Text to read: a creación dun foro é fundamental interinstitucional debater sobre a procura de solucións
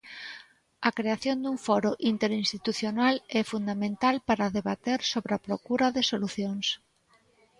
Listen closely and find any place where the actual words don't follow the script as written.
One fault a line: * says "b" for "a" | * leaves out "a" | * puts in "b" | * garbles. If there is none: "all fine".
* puts in "interinstitucional"
* says "para" for "interinstitucional"